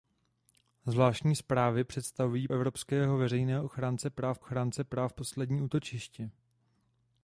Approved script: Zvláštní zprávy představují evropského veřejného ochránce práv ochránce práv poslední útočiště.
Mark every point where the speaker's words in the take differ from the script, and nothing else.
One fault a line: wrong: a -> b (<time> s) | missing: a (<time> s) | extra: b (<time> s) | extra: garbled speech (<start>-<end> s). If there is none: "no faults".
no faults